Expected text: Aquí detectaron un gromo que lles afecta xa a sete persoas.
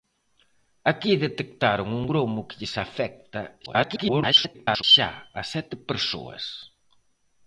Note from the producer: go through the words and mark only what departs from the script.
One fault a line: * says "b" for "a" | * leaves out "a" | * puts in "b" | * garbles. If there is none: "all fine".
* garbles